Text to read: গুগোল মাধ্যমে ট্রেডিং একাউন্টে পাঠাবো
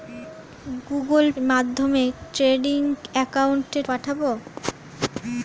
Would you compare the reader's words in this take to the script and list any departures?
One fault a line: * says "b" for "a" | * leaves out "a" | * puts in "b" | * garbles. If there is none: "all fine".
all fine